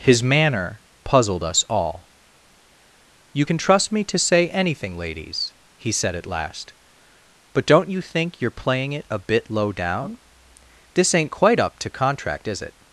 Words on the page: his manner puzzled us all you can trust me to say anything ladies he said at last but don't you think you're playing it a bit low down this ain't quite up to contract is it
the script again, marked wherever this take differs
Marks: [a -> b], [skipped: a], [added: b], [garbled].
his manner puzzled us all you can trust me to say anything ladies he said at last but don't you think you're playing it a bit low down this ain't quite up to contract is it